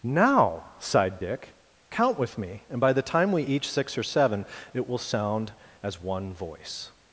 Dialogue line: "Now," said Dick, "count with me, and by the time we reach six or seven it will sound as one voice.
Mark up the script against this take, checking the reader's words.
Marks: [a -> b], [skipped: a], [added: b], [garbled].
"Now," [said -> sighed] Dick, "count with me, and by the time we [reach -> each] six or seven it will sound as one voice.